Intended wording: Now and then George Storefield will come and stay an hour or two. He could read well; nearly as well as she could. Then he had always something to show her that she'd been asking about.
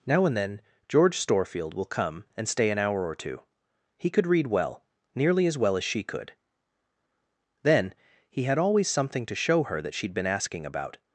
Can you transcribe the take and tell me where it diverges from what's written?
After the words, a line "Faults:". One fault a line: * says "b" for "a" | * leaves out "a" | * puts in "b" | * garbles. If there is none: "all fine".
Now and then George Storefield will come and stay an hour or two. He could read well; nearly as well as she could. Then he had always something to show her that she'd been asking about.
Faults:
all fine